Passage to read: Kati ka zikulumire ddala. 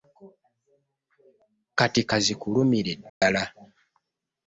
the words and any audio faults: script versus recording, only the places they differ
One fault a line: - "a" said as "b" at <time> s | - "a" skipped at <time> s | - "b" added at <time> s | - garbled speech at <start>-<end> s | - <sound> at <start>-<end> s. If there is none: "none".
- dropout at 3.1-3.2 s